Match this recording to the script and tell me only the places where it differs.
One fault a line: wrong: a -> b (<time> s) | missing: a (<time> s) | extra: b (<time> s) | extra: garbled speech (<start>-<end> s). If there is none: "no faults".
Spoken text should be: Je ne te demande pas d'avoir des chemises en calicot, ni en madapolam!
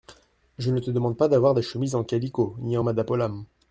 no faults